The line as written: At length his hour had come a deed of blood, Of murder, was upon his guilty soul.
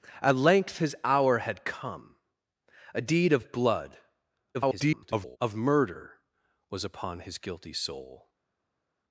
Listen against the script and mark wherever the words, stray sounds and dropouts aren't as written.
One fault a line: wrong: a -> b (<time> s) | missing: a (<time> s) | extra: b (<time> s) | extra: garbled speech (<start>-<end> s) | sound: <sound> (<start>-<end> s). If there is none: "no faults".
extra: garbled speech (4.5-5.4 s)